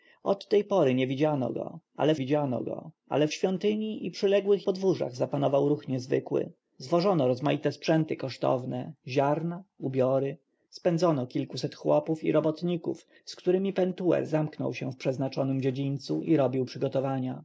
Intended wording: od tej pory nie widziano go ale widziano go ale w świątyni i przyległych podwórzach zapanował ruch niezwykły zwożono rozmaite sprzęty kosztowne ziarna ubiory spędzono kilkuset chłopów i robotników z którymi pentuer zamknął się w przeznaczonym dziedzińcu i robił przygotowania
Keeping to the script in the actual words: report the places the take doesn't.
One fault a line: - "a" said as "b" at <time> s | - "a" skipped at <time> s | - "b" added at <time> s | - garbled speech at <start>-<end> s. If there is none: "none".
none